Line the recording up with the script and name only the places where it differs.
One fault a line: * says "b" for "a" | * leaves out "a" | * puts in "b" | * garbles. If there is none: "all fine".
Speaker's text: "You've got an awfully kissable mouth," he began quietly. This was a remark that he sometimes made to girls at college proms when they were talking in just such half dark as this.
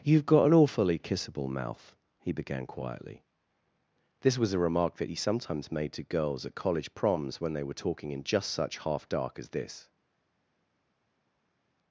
all fine